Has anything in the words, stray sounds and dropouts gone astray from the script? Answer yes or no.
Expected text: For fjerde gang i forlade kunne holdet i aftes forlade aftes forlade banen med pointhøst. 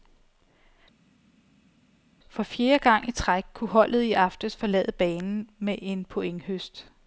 yes